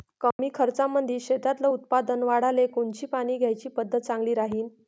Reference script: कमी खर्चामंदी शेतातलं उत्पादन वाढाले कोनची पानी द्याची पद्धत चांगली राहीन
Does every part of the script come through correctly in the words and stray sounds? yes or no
no